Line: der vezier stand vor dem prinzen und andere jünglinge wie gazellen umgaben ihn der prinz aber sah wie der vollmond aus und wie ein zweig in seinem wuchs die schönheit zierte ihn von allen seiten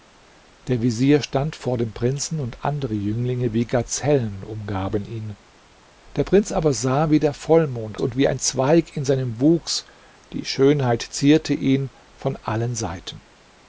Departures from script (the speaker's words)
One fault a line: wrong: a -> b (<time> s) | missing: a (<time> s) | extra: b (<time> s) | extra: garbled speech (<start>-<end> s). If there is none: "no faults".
missing: aus (8.0 s)